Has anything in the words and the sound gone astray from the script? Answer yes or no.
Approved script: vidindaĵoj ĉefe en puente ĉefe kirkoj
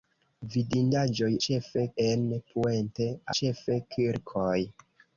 no